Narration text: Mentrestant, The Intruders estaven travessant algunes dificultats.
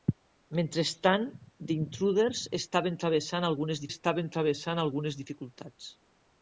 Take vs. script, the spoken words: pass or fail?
fail